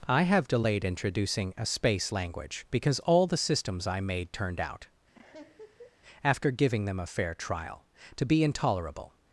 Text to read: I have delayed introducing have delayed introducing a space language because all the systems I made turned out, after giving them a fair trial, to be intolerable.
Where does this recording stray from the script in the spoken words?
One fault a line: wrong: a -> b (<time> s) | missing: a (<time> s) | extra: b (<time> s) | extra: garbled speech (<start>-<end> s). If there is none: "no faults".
missing: have delayed introducing (1.5 s)